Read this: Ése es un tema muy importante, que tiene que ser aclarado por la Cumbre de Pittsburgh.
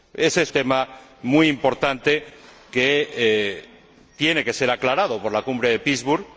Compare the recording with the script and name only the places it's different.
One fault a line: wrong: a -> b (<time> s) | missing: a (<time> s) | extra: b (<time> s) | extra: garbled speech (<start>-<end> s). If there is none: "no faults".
missing: un (0.5 s)